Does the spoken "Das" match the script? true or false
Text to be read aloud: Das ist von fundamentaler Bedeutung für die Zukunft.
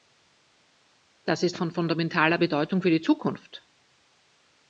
true